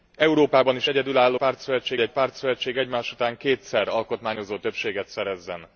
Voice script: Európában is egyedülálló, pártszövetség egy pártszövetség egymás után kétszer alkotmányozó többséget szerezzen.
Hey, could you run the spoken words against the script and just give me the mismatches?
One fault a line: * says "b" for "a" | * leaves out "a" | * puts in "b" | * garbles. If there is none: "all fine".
all fine